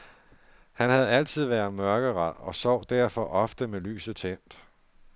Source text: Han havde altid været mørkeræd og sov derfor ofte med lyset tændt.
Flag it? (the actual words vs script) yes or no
no